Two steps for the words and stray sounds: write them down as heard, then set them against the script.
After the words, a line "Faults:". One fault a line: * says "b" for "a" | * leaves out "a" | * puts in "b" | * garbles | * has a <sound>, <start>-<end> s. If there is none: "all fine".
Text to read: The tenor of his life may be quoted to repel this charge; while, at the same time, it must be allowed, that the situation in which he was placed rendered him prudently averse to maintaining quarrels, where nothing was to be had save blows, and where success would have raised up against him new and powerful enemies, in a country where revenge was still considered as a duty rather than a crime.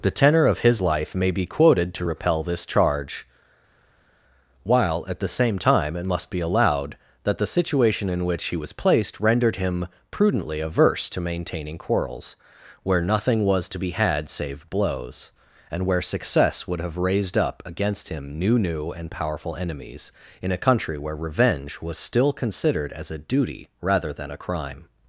The tenor of his life may be quoted to repel this charge; while, at the same time, it must be allowed, that the situation in which he was placed rendered him prudently averse to maintaining quarrels, where nothing was to be had save blows, and where success would have raised up against him new new and powerful enemies, in a country where revenge was still considered as a duty rather than a crime.
Faults:
* puts in "new"